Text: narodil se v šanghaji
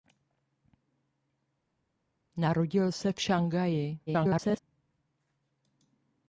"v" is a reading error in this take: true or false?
false